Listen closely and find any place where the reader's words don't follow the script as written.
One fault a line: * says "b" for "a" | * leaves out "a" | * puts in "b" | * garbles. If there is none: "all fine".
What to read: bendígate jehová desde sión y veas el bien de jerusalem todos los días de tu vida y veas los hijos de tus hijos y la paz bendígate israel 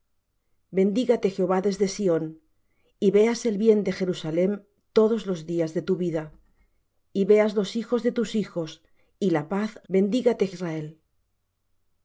all fine